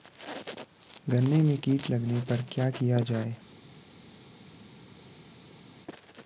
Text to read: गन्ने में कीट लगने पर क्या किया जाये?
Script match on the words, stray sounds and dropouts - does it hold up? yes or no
yes